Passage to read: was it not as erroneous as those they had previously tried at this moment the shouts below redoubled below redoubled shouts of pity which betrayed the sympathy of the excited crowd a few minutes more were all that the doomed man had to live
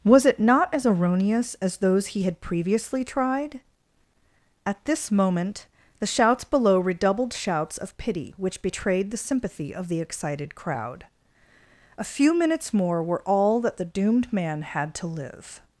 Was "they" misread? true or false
true